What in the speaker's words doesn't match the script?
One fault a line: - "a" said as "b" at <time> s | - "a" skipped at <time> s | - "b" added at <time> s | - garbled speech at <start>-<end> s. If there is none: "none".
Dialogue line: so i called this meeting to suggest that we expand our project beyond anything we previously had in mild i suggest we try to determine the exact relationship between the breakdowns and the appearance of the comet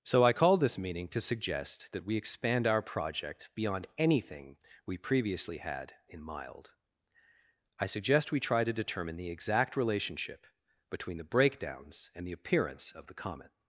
none